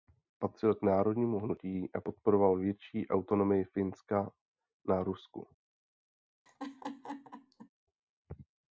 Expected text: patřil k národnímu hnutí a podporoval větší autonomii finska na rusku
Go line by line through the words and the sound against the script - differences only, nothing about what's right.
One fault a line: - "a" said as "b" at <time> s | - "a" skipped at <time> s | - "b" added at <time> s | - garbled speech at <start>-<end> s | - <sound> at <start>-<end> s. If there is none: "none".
- laugh at 6.5-7.7 s